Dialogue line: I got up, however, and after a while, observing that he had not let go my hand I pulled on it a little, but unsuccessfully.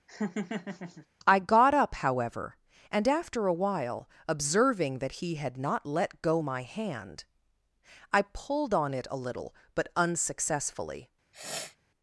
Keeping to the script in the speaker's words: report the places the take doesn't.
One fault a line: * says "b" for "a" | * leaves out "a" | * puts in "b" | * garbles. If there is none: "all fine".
all fine